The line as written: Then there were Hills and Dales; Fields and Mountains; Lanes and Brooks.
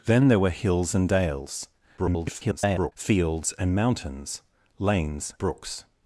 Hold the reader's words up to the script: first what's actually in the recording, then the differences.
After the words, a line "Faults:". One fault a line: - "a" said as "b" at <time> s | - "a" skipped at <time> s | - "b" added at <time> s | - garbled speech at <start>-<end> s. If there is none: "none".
Then there were Hills and Dales; [garbled] Fields and Mountains; Lanes Brooks.
Faults:
- garbled speech at 2.0-2.9 s
- "and" skipped at 5.3 s